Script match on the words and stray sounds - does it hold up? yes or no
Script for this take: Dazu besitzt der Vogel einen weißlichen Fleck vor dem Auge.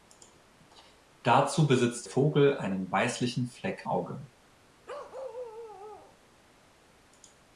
no